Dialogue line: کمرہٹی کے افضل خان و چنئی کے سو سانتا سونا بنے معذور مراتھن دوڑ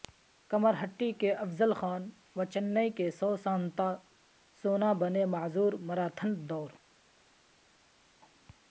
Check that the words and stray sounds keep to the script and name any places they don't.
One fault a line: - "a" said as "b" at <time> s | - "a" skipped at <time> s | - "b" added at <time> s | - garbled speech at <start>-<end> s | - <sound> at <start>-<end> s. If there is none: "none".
none